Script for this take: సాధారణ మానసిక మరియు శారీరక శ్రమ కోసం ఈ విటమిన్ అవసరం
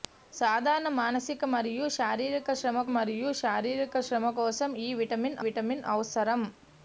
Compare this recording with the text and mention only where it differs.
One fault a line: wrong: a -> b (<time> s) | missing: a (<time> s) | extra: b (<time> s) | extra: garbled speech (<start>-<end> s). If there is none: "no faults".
extra: మరియు శారీరక శ్రమ (2.9 s)
extra: విటమిన్ (5.5 s)